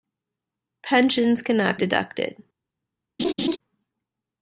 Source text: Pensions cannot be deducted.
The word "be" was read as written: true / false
false